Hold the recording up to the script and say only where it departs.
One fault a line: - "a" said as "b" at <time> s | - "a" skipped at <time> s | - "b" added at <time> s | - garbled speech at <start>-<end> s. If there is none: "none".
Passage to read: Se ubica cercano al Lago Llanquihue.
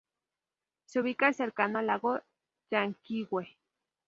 none